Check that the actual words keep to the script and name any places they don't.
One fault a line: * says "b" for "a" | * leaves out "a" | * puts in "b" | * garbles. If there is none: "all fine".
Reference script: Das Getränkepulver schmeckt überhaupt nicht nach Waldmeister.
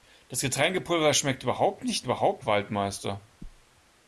* says "überhaupt" for "nach"